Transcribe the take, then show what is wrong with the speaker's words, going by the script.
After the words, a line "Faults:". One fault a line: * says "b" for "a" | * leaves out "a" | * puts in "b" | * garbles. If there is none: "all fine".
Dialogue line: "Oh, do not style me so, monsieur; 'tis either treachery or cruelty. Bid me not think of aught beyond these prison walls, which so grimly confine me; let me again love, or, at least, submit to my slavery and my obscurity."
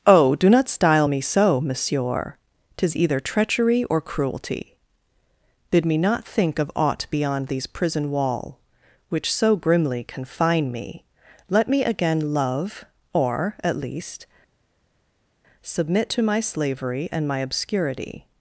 "Oh, do not style me so, monsieur; 'tis either treachery or cruelty. Bid me not think of aught beyond these prison wall, which so grimly confine me; let me again love, or, at least, submit to my slavery and my obscurity."
Faults:
* says "wall" for "walls"